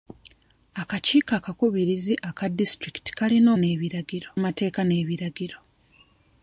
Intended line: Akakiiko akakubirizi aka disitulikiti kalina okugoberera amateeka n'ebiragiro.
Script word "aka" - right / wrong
right